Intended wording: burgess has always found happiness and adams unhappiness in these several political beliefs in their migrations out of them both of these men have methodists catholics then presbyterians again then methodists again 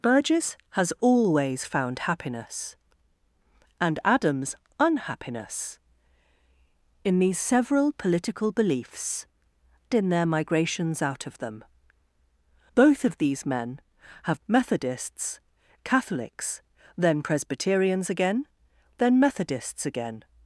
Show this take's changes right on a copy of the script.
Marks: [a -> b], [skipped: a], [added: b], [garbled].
burgess has always found happiness and adams unhappiness in these several political beliefs in their migrations out of them both of these men have methodists catholics then presbyterians again then methodists again